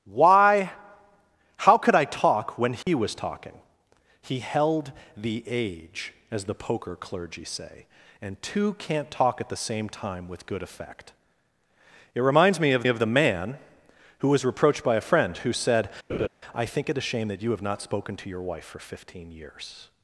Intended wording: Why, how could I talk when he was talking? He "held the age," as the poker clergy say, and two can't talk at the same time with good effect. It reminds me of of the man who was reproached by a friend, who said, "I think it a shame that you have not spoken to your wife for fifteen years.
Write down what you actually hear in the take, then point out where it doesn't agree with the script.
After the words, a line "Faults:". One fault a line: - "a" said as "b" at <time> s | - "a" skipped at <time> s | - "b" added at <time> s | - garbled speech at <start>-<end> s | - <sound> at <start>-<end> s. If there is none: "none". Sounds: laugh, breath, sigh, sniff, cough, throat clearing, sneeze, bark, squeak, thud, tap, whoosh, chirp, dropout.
Why, how could I talk when he was talking? He "held the age," as the poker clergy say, and two can't talk at the same time with good effect. It reminds me of of the man who was reproached by a friend, who said, "I think it a shame that you have not spoken to your wife for fifteen years.
Faults:
- dropout at 2.8-2.9 s
- laugh at 16.1-16.3 s